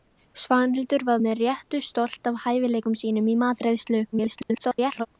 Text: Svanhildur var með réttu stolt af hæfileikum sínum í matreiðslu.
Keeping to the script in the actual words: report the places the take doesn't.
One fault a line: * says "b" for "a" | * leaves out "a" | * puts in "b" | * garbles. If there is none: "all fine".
* garbles